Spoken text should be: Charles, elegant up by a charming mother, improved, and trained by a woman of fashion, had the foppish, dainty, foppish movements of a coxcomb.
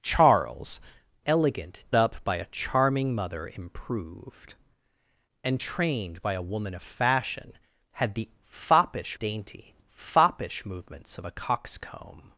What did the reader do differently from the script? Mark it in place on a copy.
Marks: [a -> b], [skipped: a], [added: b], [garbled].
Charles, elegant up by a charming mother, improved, and trained by a woman of fashion, had the foppish, dainty, foppish movements of a coxcomb.